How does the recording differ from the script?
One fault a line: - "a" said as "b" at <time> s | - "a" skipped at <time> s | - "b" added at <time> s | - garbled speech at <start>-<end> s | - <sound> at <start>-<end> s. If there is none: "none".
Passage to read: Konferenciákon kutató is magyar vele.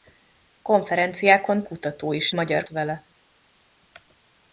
none